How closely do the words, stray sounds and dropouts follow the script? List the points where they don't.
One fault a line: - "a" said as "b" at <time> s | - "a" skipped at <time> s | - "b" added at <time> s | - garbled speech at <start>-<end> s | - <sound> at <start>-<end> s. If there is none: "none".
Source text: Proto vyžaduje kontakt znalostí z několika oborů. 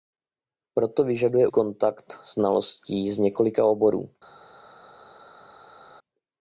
none